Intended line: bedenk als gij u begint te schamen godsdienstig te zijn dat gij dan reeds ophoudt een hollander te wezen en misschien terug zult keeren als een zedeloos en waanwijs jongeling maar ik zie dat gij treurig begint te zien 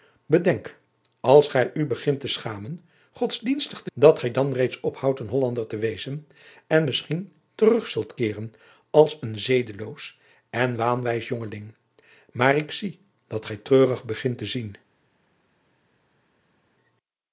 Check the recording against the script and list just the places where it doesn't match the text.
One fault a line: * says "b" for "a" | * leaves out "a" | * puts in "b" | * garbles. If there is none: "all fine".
* leaves out "zijn"